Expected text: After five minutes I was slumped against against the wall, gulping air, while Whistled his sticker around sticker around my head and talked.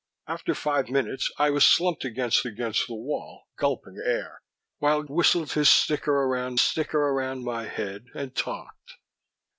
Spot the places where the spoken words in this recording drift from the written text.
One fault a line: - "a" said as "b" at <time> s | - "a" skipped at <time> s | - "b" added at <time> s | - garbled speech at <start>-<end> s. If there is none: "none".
none